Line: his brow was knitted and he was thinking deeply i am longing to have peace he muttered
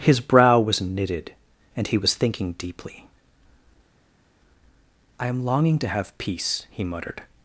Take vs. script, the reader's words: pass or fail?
pass